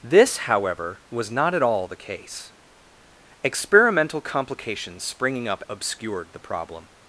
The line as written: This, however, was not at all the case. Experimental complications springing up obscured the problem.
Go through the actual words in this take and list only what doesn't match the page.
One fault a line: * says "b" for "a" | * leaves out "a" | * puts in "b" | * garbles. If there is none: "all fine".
all fine